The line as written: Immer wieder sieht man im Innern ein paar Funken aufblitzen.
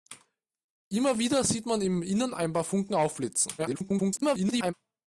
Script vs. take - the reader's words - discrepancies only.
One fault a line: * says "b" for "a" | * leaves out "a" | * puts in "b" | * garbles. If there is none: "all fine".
* garbles